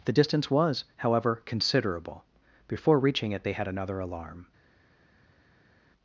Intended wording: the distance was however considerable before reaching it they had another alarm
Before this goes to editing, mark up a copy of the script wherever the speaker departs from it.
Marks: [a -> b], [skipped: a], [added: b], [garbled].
the distance was however considerable before reaching it they had another alarm